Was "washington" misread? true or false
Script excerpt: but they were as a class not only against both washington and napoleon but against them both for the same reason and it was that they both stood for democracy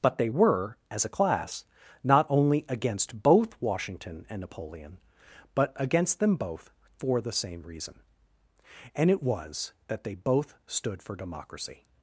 false